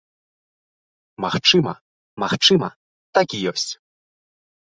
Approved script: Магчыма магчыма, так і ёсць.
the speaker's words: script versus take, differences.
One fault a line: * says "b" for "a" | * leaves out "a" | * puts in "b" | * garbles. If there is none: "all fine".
all fine